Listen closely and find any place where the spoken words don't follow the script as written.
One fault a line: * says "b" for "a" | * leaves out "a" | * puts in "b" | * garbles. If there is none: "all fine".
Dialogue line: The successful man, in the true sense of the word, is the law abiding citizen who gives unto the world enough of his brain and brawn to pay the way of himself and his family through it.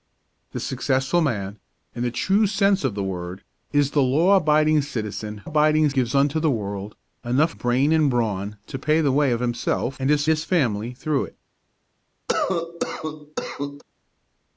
* says "abiding" for "who"
* leaves out "of his"
* puts in "his"